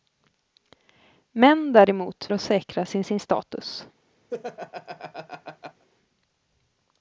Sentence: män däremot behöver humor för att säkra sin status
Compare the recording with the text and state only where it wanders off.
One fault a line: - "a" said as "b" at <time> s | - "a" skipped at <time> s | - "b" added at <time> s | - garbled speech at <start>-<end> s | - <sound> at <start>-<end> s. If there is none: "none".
- "behöver humor för" skipped at 2.3 s
- "sin" added at 3.0 s
- laugh at 4.3-5.9 s